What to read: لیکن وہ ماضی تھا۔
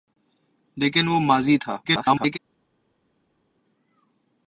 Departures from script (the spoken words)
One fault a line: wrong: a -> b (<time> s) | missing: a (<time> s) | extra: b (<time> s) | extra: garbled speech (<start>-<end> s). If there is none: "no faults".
extra: garbled speech (1.8-2.4 s)